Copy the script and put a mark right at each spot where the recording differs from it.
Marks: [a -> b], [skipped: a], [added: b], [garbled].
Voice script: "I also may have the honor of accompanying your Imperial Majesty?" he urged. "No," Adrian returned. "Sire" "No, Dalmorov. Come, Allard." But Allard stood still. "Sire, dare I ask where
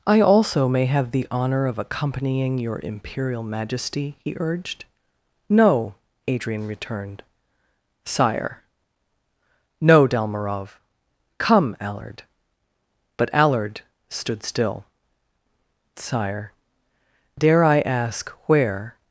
"I also may have the honor of accompanying your Imperial Majesty?" he urged. "No," Adrian returned. "Sire" "No, Dalmorov. Come, Allard." But Allard stood still. "Sire, dare I ask where